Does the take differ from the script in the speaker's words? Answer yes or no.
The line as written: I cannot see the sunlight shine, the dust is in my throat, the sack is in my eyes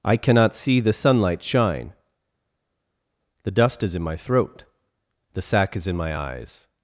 no